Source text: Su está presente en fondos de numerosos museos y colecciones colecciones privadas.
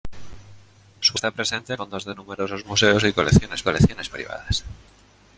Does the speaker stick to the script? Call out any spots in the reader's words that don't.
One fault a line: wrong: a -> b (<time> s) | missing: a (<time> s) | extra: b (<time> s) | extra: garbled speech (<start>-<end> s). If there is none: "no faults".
no faults